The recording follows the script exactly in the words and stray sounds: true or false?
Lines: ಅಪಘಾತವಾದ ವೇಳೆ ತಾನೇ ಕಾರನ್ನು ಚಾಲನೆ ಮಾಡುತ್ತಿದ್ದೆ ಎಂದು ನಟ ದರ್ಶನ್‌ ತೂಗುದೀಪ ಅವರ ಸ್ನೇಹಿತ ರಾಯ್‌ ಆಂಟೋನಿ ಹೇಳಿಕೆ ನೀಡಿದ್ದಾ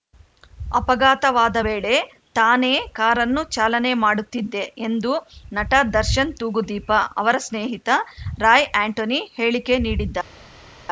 true